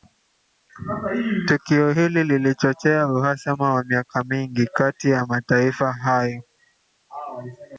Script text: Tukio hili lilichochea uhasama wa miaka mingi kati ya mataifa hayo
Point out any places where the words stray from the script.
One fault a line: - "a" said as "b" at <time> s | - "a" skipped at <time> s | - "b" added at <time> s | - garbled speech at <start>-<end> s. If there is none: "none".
none